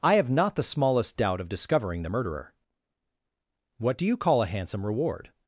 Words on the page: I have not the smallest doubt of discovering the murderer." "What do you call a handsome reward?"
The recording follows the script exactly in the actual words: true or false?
true